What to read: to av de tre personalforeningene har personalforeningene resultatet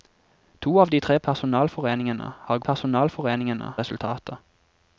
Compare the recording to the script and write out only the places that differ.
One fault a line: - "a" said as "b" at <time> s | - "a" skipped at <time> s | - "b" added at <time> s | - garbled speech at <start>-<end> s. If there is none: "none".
none